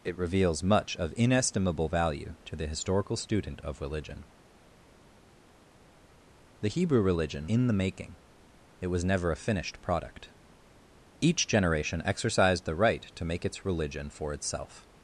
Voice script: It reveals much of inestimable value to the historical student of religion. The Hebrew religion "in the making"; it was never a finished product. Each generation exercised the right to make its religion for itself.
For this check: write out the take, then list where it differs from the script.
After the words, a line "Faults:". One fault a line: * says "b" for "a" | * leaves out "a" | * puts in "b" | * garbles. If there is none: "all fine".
It reveals much of inestimable value to the historical student of religion. The Hebrew religion "in the making"; it was never a finished product. Each generation exercised the right to make its religion for itself.
Faults:
all fine